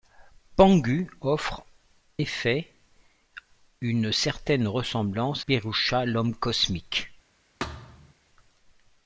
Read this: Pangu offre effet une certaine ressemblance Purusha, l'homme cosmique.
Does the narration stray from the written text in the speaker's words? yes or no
no